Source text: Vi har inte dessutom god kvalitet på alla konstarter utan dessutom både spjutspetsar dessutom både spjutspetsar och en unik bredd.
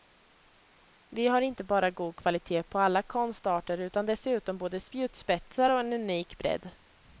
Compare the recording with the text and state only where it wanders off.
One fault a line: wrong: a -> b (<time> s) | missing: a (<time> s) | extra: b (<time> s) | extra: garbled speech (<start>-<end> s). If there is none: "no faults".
wrong: dessutom -> bara (1.6 s)
missing: dessutom både spjutspetsar (5.7 s)